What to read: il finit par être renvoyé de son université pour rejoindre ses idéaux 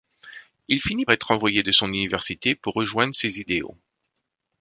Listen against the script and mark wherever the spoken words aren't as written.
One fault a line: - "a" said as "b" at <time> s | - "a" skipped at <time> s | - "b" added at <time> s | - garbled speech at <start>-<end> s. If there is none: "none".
- "par" skipped at 1.1 s